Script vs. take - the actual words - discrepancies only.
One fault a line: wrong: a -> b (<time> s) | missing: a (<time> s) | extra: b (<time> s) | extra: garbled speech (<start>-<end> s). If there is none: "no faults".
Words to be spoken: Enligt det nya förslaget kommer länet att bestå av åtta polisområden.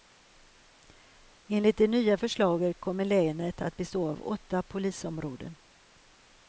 no faults